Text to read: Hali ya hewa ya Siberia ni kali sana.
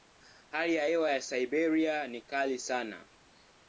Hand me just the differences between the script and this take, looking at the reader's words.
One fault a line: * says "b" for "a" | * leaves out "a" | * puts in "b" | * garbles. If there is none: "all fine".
all fine